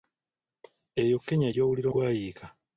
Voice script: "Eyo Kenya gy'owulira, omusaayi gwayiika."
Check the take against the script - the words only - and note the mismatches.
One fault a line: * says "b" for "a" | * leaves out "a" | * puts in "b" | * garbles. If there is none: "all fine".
* leaves out "omusaayi"